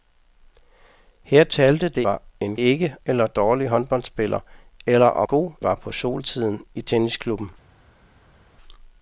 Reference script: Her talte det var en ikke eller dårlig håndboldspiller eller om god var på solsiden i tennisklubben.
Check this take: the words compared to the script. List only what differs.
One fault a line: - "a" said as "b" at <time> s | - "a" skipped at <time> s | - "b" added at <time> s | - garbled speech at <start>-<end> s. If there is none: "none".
none